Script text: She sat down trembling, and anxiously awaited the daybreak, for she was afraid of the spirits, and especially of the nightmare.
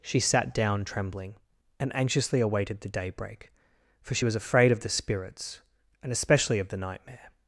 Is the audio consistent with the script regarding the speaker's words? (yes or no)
yes